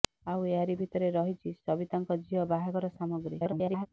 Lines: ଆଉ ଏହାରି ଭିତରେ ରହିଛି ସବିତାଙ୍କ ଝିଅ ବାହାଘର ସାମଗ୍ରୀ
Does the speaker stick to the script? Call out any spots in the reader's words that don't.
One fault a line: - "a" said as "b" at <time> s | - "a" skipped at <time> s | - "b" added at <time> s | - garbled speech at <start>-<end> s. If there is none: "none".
- garbled speech at 3.4-3.9 s